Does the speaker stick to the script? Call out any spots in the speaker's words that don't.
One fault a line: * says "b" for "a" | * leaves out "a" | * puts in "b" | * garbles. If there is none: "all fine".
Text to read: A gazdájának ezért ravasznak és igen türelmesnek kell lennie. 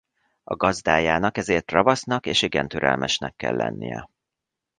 all fine